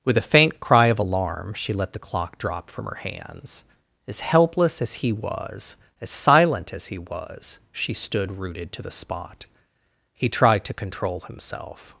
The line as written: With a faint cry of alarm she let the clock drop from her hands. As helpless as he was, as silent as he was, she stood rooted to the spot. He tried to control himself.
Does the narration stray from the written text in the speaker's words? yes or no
no